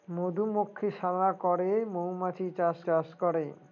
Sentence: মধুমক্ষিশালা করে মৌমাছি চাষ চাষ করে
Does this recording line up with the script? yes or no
yes